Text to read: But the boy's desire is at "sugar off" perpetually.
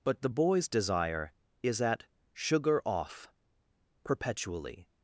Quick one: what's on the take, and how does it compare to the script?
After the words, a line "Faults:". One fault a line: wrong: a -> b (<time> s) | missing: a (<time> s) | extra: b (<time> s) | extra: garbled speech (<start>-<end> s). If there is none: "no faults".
But the boy's desire is at "sugar off" perpetually.
Faults:
no faults